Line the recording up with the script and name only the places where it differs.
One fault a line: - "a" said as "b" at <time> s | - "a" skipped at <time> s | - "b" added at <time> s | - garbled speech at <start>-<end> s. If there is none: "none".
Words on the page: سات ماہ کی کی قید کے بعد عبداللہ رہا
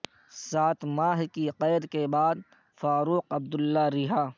- "کی" skipped at 1.4 s
- "فاروق" added at 2.8 s